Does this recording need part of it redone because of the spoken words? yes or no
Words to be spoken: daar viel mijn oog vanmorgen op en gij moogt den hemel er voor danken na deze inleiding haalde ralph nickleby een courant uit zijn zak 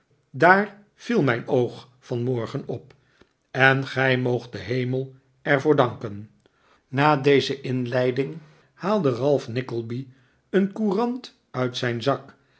no